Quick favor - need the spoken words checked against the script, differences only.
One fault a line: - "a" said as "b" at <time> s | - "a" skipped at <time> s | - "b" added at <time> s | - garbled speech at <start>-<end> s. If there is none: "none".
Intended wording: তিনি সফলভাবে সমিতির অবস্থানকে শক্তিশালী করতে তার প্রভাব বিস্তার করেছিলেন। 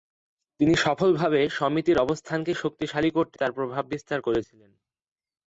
none